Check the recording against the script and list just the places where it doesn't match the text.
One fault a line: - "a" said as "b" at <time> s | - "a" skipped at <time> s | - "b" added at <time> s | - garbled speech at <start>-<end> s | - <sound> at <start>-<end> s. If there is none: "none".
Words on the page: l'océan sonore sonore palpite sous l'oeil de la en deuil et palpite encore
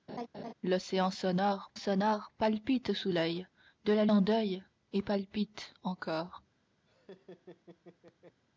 - laugh at 0.1-0.5 s
- laugh at 6.8-8.4 s